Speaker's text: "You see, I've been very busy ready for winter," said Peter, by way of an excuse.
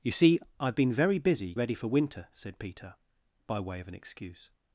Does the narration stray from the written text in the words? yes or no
no